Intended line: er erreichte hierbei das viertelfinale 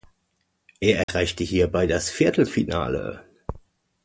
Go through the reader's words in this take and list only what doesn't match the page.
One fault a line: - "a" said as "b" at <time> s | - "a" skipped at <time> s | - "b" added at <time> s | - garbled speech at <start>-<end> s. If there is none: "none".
none